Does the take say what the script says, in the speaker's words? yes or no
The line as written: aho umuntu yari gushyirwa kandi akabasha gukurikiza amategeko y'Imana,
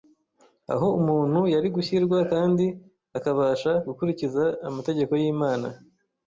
yes